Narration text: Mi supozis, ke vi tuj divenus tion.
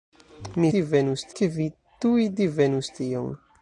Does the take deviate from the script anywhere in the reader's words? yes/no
yes